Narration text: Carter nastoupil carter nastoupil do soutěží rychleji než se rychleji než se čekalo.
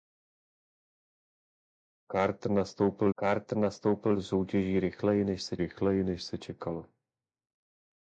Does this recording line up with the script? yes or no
yes